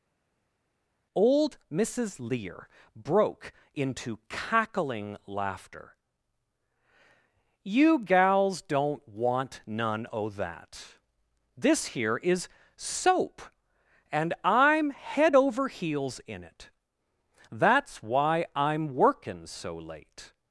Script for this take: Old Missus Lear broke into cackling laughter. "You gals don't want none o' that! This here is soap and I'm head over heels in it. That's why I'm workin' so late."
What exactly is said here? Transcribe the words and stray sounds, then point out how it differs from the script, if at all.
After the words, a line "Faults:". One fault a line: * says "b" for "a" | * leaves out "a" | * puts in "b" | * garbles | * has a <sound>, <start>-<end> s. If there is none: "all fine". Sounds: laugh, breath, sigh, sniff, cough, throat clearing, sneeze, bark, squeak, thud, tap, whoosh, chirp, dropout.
Old Missus Lear broke into cackling laughter. "You gals don't want none o' that! This here is soap and I'm head over heels in it. That's why I'm workin' so late."
Faults:
all fine